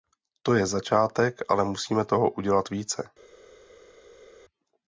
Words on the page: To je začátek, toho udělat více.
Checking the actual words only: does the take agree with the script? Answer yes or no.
no